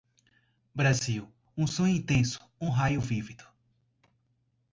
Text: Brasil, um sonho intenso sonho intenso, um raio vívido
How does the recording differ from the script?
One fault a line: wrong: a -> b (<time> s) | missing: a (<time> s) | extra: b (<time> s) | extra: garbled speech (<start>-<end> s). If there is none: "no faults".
missing: sonho intenso (2.4 s)